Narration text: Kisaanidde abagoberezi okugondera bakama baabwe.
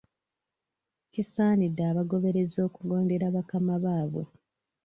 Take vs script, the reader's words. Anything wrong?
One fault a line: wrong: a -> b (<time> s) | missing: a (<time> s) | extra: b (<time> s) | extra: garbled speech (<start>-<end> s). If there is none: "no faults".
no faults